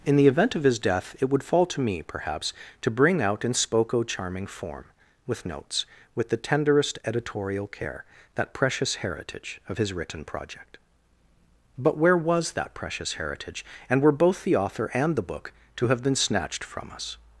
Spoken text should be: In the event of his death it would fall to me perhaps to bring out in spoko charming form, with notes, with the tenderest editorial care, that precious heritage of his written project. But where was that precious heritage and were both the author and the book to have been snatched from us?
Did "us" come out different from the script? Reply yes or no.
no